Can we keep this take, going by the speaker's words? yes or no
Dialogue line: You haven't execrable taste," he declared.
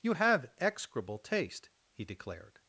no